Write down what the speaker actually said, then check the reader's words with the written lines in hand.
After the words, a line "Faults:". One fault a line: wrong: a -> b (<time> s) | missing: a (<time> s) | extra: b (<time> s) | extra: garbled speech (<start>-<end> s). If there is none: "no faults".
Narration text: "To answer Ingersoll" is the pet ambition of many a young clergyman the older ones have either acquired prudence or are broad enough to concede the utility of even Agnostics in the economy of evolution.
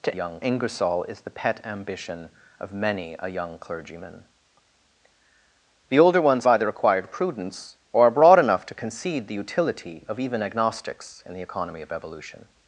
"To young Ingersoll" is the pet ambition of many a young clergyman the older ones either acquired prudence or are broad enough to concede the utility of even Agnostics in the economy of evolution.
Faults:
wrong: answer -> young (0.1 s)
missing: have (6.4 s)